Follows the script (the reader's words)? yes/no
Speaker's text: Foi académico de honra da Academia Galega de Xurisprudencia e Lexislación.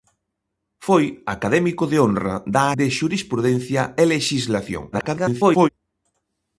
no